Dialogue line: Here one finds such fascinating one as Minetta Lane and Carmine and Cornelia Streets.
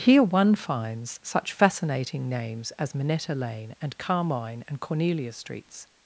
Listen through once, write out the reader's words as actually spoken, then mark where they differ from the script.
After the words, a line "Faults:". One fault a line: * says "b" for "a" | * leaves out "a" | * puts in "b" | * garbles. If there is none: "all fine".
Here one finds such fascinating names as Minetta Lane and Carmine and Cornelia Streets.
Faults:
* says "names" for "one"